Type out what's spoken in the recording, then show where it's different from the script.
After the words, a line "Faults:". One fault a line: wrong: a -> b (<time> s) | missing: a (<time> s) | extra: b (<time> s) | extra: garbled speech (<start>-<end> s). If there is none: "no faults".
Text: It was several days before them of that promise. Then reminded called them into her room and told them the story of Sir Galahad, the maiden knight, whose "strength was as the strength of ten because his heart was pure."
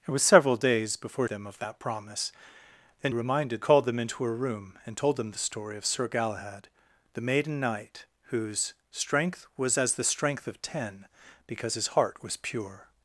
It was several days before them of that promise. Then reminded called them into her room and told them the story of Sir Galahad, the maiden knight, whose "strength was as the strength of ten because his heart was pure."
Faults:
no faults